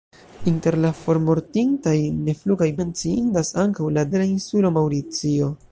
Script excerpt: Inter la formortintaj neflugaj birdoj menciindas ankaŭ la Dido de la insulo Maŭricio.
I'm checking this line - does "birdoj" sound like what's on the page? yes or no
no